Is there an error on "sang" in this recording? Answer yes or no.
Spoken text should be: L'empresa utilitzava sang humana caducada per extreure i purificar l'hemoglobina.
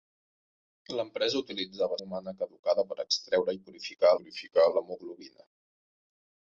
yes